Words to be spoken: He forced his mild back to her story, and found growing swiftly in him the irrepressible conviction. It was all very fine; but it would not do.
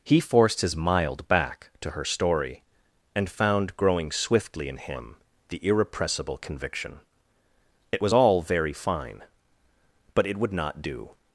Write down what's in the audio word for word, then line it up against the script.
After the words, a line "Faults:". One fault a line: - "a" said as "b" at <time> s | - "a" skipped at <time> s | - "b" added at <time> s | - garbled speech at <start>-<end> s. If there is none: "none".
He forced his mild back to her story, and found growing swiftly in him the irrepressible conviction. It was all very fine; but it would not do.
Faults:
none